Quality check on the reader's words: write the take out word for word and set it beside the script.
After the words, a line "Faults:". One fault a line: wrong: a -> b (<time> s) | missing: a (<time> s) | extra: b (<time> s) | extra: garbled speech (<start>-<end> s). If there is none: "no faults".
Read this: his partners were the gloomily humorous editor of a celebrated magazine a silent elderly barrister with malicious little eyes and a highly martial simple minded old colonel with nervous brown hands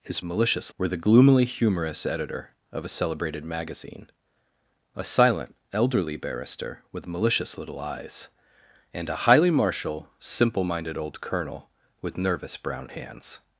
his malicious were the gloomily humorous editor of a celebrated magazine a silent elderly barrister with malicious little eyes and a highly martial simple minded old colonel with nervous brown hands
Faults:
wrong: partners -> malicious (0.2 s)